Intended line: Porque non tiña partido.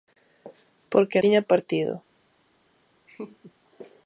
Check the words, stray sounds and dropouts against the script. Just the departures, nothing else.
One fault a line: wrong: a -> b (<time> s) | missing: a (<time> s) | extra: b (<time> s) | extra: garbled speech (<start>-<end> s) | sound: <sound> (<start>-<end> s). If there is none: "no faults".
missing: non (1.2 s)
sound: laugh (3.1-3.5 s)